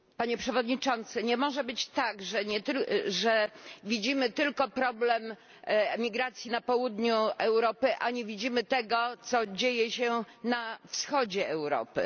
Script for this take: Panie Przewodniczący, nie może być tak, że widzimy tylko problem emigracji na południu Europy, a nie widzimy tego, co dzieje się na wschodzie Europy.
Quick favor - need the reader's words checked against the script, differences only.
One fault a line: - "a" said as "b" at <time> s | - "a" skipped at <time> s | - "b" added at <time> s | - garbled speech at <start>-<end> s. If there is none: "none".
none